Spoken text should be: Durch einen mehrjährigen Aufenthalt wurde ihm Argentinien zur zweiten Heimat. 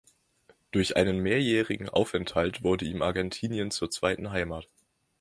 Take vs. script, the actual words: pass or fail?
pass